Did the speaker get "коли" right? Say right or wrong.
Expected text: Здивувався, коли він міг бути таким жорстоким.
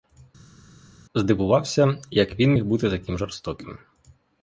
wrong